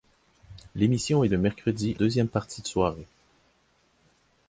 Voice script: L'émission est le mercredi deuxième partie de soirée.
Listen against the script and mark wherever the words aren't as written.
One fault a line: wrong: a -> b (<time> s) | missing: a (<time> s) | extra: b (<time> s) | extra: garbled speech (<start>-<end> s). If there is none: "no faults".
no faults